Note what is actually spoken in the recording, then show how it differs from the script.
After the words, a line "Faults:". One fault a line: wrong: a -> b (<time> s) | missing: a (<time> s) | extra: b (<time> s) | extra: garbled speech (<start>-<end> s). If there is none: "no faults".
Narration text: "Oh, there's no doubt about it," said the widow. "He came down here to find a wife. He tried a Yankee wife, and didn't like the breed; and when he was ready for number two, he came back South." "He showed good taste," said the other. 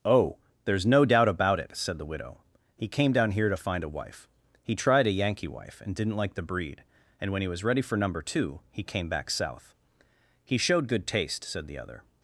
"Oh, there's no doubt about it," said the widow. "He came down here to find a wife. He tried a Yankee wife, and didn't like the breed; and when he was ready for number two, he came back South." "He showed good taste," said the other.
Faults:
no faults